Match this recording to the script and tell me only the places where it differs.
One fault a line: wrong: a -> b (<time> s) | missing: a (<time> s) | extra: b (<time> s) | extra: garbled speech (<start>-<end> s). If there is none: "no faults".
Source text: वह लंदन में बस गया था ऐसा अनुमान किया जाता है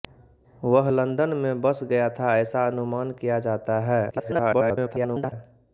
extra: garbled speech (4.1-5.3 s)